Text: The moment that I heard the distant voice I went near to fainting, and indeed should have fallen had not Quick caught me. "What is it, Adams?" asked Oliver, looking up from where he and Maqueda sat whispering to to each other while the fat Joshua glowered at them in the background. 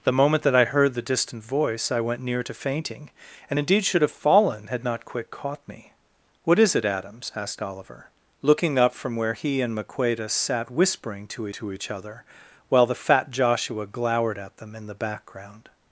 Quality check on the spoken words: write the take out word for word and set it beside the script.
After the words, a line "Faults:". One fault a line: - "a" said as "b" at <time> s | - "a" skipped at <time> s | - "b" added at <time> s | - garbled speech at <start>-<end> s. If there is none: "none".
The moment that I heard the distant voice I went near to fainting, and indeed should have fallen had not Quick caught me. "What is it, Adams?" asked Oliver, looking up from where he and Maqueda sat whispering to to each other while the fat Joshua glowered at them in the background.
Faults:
none